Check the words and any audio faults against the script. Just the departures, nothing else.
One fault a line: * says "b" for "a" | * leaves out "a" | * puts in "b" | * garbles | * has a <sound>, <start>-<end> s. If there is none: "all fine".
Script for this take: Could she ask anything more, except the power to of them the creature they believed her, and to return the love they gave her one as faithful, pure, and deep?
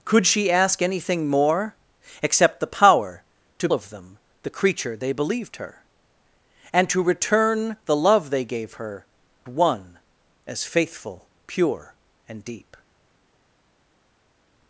all fine